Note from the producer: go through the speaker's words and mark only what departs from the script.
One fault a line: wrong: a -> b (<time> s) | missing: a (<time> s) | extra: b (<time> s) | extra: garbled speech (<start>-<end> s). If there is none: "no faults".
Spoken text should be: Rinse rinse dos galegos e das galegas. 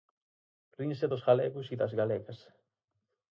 missing: rinse (1.1 s)